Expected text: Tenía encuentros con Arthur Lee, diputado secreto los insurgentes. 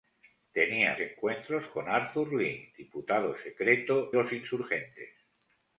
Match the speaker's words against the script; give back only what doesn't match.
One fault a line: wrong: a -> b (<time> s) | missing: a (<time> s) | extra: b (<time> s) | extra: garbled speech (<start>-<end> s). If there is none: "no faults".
no faults